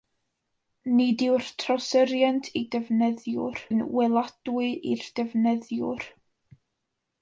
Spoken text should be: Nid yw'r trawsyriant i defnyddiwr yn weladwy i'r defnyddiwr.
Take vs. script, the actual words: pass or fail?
pass